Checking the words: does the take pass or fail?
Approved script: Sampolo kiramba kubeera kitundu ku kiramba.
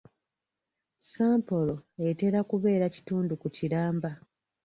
fail